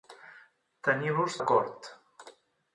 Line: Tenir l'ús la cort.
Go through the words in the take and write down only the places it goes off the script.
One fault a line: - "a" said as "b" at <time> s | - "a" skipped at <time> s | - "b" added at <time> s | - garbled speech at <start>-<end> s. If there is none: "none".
none